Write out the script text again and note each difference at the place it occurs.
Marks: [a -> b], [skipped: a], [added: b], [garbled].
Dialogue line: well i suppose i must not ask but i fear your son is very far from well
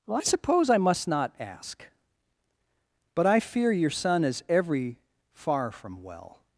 well i suppose i must not ask but i fear your son is [very -> every] far from well